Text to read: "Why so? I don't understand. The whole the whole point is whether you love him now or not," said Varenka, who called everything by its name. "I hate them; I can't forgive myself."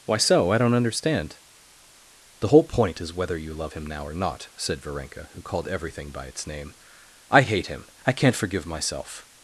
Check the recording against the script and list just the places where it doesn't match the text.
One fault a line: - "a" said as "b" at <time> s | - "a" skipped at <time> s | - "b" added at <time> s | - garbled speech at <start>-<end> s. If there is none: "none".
- "the whole" skipped at 2.6 s
- "them" said as "him" at 7.7 s